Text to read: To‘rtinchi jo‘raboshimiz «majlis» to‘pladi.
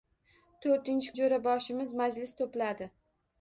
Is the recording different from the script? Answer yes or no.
no